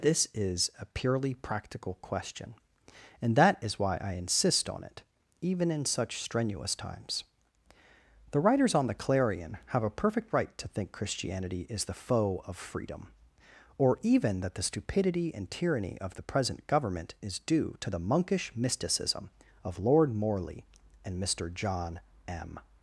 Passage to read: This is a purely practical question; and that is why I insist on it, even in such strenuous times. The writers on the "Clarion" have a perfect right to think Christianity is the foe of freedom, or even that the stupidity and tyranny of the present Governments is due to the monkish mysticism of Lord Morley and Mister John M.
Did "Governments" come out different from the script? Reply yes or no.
yes